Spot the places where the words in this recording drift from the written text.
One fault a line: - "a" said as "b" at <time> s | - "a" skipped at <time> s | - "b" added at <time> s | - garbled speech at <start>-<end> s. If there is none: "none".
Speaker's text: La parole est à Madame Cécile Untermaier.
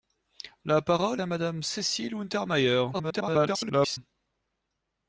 - "est" skipped at 1.2 s
- garbled speech at 2.9-4.0 s